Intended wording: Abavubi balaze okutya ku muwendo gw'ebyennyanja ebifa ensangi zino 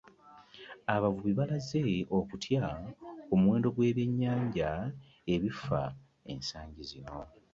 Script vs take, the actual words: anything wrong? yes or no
no